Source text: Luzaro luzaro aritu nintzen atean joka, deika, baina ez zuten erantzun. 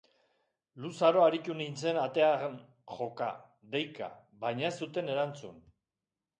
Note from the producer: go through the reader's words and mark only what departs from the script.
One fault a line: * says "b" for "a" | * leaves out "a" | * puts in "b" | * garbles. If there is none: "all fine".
* leaves out "luzaro"